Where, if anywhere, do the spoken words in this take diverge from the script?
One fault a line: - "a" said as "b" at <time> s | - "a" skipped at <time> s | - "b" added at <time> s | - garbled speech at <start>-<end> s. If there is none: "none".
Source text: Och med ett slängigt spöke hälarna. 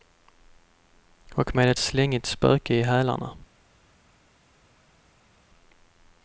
- "i" added at 2.7 s